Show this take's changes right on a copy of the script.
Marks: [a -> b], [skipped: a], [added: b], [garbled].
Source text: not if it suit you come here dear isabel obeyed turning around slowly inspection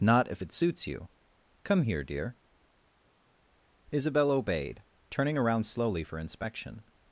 not if it [suit -> suits] you come here dear isabel obeyed turning around slowly [added: for] inspection